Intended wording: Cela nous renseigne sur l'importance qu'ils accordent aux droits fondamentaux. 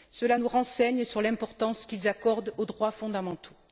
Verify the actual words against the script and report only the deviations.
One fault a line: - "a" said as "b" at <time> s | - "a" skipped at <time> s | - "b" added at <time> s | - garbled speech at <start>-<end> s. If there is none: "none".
none